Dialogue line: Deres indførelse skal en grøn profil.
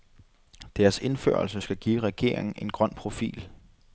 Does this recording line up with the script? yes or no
no